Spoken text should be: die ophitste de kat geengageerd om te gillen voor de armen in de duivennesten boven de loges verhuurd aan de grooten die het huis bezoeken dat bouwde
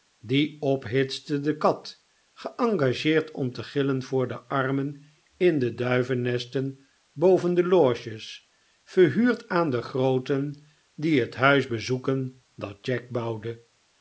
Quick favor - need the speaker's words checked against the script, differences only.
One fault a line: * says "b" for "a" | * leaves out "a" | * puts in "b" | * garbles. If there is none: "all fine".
* puts in "jack"